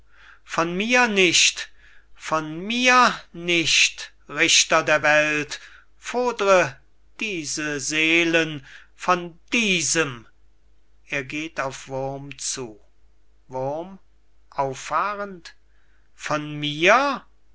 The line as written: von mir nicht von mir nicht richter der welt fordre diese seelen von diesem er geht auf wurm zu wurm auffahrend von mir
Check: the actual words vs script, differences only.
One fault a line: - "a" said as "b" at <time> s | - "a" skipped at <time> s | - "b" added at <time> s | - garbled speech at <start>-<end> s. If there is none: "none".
none